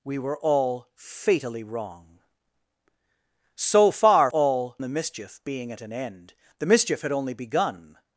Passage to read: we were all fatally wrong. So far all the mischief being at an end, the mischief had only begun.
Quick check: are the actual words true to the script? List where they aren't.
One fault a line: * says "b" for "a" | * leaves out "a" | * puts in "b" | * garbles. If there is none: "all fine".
all fine